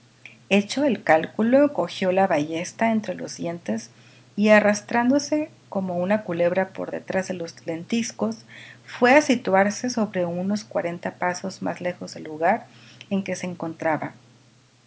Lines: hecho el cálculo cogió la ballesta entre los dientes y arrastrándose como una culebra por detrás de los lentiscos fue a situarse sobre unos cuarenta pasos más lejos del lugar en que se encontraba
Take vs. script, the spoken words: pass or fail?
pass